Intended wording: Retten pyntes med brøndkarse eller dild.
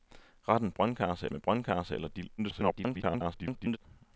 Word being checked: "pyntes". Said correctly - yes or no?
no